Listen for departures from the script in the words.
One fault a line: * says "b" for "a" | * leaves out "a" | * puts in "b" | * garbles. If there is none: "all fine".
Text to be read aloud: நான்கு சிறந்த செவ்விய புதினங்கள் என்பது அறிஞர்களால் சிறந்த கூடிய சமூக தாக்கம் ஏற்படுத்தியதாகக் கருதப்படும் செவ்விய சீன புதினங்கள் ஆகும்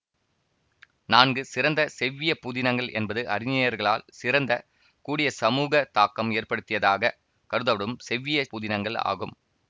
* leaves out "சீன"